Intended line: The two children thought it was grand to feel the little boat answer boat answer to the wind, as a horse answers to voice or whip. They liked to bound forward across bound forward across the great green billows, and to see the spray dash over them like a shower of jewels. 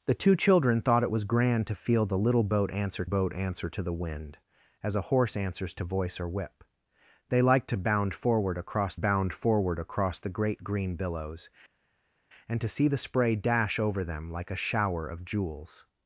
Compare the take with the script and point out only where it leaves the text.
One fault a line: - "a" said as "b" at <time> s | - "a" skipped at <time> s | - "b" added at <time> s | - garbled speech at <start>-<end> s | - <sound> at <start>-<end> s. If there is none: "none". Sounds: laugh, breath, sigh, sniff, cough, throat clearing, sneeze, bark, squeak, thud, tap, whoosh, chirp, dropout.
none